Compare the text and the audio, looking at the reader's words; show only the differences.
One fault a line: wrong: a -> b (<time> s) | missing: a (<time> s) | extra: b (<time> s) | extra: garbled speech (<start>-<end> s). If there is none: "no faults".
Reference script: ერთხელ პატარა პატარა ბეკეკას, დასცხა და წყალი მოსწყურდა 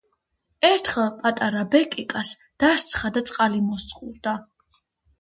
missing: პატარა (1.6 s)